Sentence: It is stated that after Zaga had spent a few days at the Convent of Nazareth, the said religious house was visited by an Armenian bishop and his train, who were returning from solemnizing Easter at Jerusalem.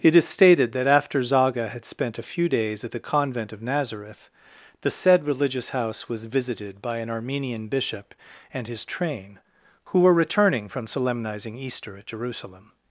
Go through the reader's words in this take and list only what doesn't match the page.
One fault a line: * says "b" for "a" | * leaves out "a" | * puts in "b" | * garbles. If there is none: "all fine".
all fine